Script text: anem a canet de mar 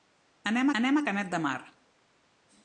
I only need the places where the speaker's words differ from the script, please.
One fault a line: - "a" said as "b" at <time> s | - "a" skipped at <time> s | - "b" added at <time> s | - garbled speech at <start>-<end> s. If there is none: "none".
- "anem" added at 0.8 s